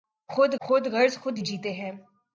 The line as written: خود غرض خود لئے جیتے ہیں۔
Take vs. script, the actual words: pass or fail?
fail